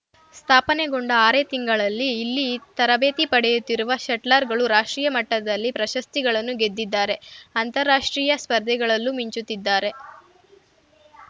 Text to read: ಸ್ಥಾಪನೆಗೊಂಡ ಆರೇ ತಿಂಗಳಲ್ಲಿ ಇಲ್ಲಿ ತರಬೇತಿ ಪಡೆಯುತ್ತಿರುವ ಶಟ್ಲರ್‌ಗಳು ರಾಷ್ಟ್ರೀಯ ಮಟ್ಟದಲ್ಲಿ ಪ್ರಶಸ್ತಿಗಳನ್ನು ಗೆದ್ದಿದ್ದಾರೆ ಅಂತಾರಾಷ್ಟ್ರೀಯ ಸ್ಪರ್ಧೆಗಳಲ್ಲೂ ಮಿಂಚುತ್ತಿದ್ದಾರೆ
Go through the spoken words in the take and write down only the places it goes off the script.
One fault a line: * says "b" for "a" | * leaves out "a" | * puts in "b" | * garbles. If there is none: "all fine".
all fine